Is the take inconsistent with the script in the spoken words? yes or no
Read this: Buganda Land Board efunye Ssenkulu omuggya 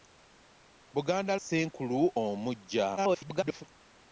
yes